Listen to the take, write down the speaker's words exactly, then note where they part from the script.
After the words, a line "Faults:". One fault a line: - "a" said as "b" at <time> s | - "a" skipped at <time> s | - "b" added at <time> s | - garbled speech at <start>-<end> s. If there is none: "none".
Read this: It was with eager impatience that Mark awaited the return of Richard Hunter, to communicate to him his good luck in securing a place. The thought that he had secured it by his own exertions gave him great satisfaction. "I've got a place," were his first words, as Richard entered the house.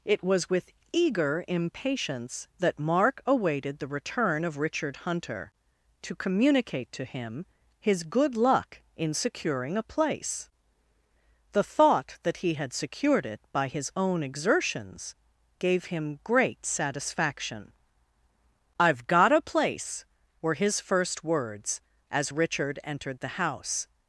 It was with eager impatience that Mark awaited the return of Richard Hunter, to communicate to him his good luck in securing a place. The thought that he had secured it by his own exertions gave him great satisfaction. "I've got a place," were his first words, as Richard entered the house.
Faults:
none